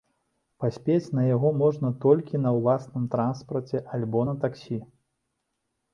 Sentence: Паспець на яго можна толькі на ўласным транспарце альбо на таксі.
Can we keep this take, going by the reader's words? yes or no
yes